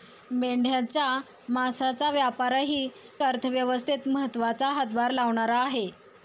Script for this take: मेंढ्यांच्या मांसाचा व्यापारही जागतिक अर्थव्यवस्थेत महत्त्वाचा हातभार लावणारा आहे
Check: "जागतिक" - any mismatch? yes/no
yes